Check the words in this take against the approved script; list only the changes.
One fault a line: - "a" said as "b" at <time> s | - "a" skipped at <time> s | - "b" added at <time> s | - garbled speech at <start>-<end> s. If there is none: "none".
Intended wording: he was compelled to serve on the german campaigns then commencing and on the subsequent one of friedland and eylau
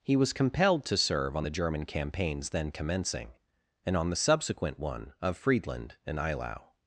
none